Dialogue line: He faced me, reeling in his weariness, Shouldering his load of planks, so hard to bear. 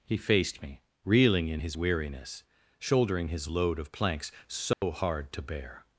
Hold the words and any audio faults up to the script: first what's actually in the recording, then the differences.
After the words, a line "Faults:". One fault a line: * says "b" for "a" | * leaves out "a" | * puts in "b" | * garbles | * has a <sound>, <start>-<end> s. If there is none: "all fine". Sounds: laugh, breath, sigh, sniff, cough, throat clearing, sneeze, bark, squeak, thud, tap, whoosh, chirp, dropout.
He faced me, reeling in his weariness, Shouldering his load of planks, so hard to bear.
Faults:
* has a dropout, 4.7-4.8 s